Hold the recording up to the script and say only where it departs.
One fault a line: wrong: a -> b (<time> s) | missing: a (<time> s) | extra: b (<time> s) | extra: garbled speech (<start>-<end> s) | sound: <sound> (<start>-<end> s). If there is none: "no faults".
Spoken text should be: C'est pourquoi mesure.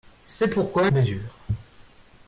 no faults